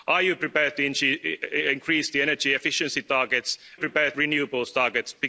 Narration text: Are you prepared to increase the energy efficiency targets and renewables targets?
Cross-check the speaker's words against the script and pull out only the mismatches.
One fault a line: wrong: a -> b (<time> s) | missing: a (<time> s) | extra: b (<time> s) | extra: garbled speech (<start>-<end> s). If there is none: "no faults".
wrong: and -> prepared (3.8 s)